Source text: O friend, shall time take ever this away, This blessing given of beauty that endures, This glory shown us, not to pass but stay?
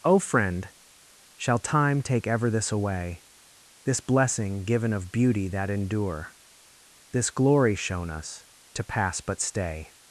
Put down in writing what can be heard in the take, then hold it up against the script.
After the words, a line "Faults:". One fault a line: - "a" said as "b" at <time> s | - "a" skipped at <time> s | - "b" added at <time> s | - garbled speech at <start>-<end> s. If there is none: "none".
O friend, shall time take ever this away, This blessing given of beauty that endure, This glory shown us, to pass but stay?
Faults:
- "endures" said as "endure" at 5.7 s
- "not" skipped at 8.4 s